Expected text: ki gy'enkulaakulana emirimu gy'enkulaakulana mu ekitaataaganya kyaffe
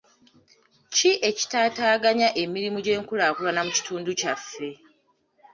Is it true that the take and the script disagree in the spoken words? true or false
true